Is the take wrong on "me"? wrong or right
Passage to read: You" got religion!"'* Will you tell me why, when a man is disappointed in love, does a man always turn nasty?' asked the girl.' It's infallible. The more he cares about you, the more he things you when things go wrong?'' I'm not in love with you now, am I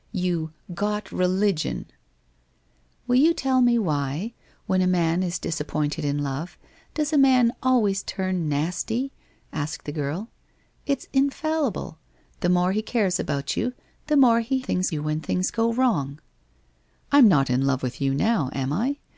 right